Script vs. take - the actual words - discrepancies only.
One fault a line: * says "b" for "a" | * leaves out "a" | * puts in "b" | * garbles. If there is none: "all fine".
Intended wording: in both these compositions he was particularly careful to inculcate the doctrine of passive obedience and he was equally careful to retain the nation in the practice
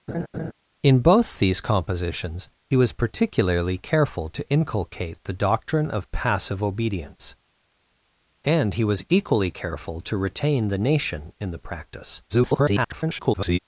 * garbles